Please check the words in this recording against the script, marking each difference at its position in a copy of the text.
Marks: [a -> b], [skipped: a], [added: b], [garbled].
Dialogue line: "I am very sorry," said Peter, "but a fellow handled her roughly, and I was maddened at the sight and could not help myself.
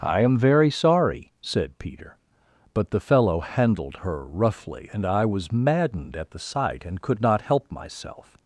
"I am very sorry," said Peter, "but [a -> the] fellow handled her roughly, and I was maddened at the sight and could not help myself.